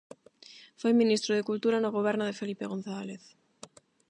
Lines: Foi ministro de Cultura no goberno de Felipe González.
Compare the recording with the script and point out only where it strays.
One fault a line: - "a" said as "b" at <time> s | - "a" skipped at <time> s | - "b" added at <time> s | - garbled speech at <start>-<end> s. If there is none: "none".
none